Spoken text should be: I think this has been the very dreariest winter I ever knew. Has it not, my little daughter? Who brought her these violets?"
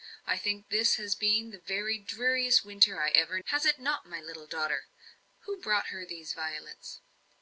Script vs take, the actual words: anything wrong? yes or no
yes